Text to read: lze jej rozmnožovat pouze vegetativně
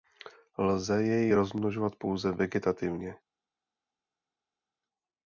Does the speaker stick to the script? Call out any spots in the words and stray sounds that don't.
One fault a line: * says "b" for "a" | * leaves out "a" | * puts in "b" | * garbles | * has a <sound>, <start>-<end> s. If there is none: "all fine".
all fine